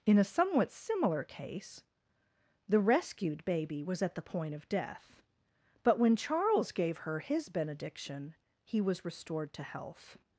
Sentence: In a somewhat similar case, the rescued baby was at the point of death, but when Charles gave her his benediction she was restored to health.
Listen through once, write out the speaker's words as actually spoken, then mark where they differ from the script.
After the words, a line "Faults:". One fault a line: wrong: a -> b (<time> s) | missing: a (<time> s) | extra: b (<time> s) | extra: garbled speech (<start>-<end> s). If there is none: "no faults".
In a somewhat similar case, the rescued baby was at the point of death, but when Charles gave her his benediction he was restored to health.
Faults:
wrong: she -> he (8.6 s)